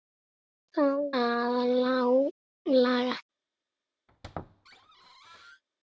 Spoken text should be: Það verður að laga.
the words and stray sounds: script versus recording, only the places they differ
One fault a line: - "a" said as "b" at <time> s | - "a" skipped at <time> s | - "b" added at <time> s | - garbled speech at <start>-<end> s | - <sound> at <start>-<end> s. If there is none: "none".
- "verður" skipped at 1.0 s
- squeak at 4.1-5.6 s